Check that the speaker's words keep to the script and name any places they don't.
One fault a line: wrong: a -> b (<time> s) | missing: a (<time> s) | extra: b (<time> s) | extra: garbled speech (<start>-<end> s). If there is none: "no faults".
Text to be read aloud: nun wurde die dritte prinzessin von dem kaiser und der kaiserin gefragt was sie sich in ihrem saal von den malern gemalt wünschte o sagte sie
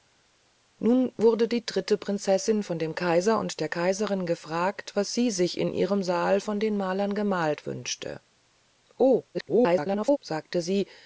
extra: garbled speech (9.3-10.2 s)